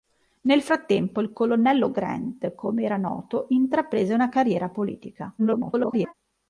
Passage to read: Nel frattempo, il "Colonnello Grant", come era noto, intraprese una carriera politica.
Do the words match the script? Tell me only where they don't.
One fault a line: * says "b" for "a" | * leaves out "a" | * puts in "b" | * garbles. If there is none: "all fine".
* garbles